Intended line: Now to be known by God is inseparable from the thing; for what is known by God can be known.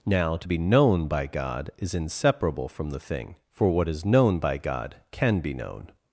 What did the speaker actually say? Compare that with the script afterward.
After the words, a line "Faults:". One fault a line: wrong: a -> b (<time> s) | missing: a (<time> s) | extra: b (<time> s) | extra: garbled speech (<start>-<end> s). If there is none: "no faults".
Now to be known by God is inseparable from the thing; for what is known by God can be known.
Faults:
no faults